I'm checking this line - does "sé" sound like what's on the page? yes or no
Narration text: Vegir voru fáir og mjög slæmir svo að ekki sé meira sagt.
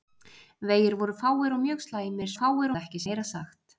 no